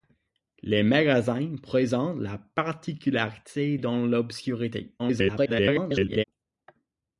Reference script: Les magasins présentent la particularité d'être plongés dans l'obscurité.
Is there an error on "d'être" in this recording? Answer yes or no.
yes